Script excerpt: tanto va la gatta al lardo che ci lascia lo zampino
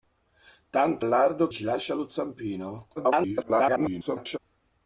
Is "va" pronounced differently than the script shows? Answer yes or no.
yes